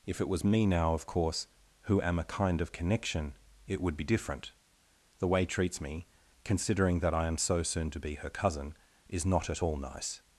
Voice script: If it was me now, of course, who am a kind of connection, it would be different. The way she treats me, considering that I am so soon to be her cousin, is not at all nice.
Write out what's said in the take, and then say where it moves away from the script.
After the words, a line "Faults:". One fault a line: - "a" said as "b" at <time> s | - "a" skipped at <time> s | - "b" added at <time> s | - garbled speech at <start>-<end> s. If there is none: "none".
If it was me now, of course, who am a kind of connection, it would be different. The way treats me, considering that I am so soon to be her cousin, is not at all nice.
Faults:
- "she" skipped at 5.5 s